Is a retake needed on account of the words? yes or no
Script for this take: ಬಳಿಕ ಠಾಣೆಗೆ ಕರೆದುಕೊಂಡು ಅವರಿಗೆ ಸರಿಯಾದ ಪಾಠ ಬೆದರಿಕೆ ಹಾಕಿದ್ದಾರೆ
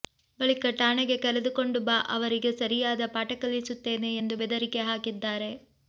yes